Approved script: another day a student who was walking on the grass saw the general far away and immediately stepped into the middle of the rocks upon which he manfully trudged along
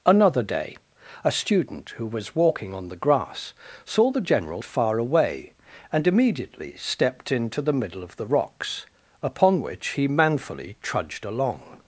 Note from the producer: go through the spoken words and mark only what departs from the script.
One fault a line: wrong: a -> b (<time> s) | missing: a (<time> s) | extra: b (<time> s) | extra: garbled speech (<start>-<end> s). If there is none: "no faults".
no faults